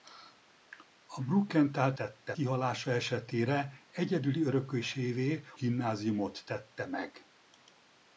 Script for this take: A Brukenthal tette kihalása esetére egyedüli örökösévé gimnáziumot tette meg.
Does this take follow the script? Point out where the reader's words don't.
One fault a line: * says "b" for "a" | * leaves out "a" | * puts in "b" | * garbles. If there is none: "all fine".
all fine